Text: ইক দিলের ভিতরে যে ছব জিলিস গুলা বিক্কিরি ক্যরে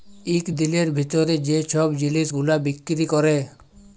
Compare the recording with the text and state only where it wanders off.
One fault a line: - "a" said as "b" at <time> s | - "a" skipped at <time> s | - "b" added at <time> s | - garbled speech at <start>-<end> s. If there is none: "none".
none